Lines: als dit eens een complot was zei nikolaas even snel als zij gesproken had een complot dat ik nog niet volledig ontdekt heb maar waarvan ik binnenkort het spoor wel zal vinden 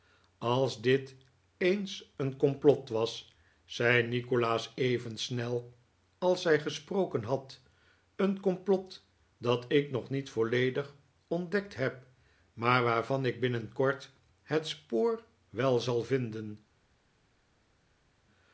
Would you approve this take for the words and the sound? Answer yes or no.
yes